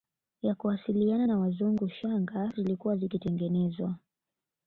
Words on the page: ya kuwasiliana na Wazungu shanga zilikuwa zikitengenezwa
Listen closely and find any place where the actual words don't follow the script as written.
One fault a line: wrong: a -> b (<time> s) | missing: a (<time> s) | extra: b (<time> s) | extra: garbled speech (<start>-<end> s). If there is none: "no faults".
no faults